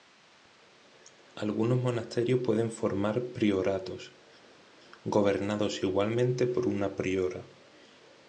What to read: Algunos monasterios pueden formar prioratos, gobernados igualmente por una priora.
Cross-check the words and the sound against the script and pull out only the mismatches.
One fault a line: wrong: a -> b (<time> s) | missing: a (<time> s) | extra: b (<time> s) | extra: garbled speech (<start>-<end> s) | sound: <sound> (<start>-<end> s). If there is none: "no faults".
no faults